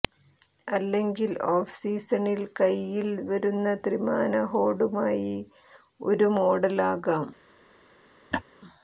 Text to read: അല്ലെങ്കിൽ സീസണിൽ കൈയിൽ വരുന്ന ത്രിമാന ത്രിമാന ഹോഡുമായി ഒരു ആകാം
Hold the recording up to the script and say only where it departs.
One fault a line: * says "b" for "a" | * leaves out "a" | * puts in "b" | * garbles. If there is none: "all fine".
* puts in "ഓഫ്"
* leaves out "ത്രിമാന"
* puts in "മോഡൽ"